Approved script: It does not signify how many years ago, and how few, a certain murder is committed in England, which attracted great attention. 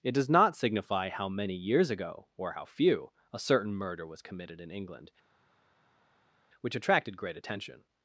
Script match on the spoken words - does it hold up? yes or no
no